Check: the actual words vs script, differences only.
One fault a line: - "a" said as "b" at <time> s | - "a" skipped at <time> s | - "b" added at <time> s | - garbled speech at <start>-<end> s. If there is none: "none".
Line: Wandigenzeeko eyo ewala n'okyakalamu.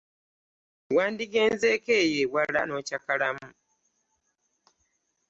none